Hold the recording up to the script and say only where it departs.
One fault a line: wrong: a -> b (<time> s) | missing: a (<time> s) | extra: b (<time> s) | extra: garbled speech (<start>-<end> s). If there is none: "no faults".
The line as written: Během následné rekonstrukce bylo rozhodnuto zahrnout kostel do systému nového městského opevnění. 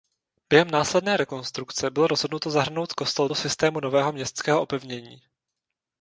no faults